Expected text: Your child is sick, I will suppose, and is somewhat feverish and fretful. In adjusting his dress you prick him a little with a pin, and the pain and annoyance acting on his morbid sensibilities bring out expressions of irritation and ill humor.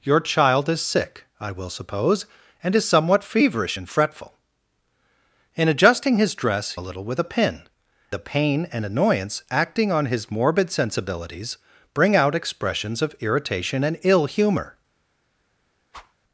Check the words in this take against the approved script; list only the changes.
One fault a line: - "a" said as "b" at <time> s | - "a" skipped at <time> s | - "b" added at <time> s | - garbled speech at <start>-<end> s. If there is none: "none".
- "you prick him" skipped at 6.8 s
- "and" skipped at 7.6 s